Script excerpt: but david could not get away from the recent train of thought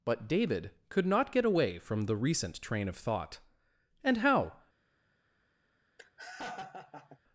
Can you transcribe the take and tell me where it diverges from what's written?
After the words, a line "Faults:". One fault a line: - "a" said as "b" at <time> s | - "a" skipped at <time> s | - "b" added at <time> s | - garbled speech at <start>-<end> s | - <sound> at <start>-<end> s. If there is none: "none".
but david could not get away from the recent train of thought and how
Faults:
- "and how" added at 4.0 s
- laugh at 6.0-7.2 s